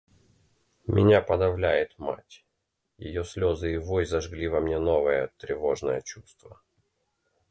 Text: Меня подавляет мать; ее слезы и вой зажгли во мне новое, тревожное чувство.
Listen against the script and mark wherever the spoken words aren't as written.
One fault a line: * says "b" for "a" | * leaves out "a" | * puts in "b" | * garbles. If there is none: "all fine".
all fine